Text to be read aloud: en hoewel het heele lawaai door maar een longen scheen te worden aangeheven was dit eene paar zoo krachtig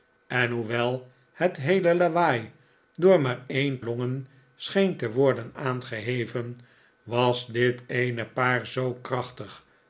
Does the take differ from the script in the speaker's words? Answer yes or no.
no